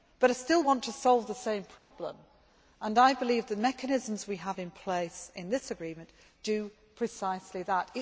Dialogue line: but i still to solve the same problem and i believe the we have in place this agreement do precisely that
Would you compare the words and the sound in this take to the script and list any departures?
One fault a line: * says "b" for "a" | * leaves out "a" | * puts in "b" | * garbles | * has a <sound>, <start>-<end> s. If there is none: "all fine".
* puts in "want"
* has a dropout, 1.8-1.9 s
* puts in "mechanisms"
* puts in "in"